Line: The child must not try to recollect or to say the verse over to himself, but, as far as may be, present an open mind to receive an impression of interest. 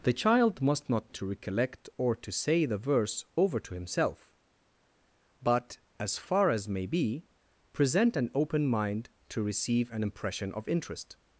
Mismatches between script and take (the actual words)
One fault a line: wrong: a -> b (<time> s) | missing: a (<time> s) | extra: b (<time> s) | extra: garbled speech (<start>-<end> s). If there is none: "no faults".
missing: try (1.1 s)